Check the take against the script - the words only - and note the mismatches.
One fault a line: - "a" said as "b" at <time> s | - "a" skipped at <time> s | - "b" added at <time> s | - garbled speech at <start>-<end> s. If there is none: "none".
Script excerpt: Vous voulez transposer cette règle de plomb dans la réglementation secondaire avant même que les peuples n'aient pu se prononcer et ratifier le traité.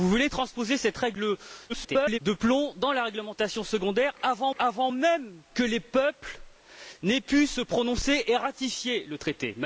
- garbled speech at 1.7-2.2 s
- "avant" added at 4.6 s